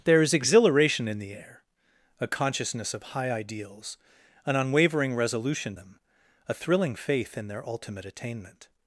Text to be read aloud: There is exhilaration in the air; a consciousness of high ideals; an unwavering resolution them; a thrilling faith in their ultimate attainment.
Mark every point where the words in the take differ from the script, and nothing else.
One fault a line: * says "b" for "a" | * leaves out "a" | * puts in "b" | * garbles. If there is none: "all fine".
all fine